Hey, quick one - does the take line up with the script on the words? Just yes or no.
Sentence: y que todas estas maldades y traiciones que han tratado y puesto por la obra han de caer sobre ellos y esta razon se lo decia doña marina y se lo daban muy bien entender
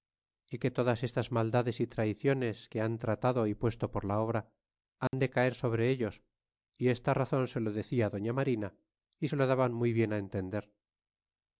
yes